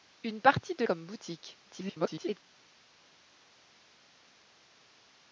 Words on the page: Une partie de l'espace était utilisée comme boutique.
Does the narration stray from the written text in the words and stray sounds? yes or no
yes